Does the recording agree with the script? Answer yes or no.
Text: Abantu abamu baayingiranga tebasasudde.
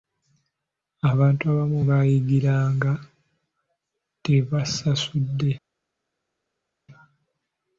yes